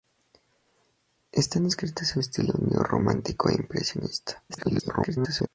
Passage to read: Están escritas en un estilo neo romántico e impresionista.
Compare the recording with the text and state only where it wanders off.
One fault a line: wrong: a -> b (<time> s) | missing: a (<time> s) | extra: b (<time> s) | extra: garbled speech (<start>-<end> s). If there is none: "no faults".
missing: un (2.2 s)
extra: garbled speech (4.5-5.5 s)